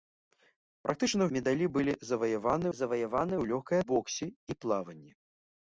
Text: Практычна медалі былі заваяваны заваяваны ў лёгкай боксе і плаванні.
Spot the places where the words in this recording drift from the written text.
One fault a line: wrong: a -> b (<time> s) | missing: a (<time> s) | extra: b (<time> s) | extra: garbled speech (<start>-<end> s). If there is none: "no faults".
no faults